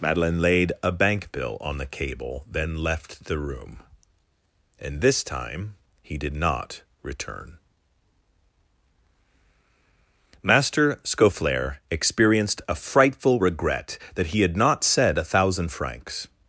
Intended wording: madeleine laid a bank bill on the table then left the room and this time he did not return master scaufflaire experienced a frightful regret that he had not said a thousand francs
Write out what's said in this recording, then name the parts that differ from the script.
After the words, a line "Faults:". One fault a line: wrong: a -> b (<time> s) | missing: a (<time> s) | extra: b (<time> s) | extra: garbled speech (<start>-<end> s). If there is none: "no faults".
madeleine laid a bank bill on the cable then left the room and this time he did not return master scaufflaire experienced a frightful regret that he had not said a thousand francs
Faults:
wrong: table -> cable (1.9 s)